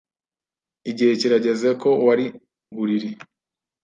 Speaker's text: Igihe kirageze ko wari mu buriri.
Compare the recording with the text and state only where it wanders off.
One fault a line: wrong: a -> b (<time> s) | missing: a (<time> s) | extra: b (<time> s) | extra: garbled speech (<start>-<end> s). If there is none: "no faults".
missing: mu (2.2 s)